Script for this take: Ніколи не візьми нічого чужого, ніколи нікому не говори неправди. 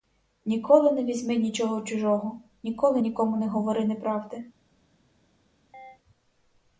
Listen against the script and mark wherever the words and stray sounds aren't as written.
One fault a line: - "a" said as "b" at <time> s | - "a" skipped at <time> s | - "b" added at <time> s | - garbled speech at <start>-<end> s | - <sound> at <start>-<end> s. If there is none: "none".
- chirp at 5.7-6.0 s